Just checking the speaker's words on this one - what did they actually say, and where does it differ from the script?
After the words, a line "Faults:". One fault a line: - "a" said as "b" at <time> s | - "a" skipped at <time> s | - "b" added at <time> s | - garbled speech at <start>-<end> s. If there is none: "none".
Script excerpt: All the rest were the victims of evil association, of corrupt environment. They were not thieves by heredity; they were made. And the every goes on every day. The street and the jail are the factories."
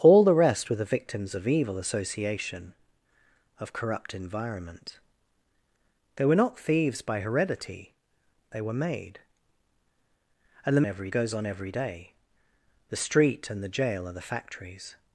All the rest were the victims of evil association, of corrupt environment. They were not thieves by heredity; they were made. And the every goes on every day. The street and the jail are the factories."
Faults:
none